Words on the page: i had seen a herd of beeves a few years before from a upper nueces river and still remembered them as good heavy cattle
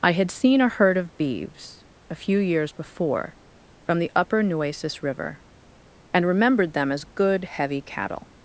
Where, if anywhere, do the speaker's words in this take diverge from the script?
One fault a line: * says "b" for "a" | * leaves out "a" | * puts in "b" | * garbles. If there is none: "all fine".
* says "the" for "a"
* leaves out "still"